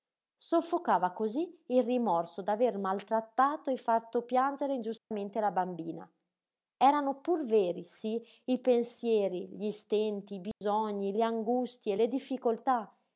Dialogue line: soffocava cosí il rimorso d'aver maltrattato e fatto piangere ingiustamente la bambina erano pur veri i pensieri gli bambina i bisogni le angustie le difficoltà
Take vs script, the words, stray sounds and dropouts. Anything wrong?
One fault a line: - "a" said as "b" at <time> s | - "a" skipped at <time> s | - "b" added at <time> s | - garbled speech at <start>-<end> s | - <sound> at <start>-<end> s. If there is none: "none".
- dropout at 5.0-5.1 s
- "sí" added at 7.8 s
- "bambina" said as "stenti" at 9.7 s
- dropout at 10.5-10.6 s